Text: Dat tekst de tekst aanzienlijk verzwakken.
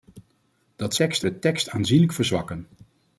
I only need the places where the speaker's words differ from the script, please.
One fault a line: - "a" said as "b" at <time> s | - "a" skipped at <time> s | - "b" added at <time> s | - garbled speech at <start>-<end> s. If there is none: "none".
none